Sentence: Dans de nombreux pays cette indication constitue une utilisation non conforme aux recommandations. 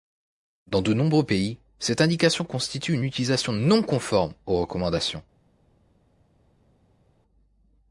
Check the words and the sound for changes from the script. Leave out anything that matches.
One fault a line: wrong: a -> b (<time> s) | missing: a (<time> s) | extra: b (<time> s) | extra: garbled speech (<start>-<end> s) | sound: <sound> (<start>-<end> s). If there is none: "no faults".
no faults